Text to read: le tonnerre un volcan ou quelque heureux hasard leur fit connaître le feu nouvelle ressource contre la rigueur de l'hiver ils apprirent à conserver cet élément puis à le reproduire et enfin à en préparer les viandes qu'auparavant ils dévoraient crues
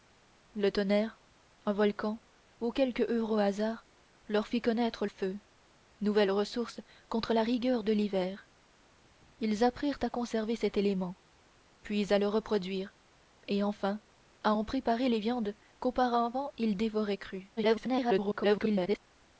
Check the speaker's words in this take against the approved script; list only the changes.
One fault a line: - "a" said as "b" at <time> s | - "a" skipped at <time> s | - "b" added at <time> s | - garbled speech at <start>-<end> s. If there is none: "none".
- "le" skipped at 5.0 s
- garbled speech at 17.6-19.0 s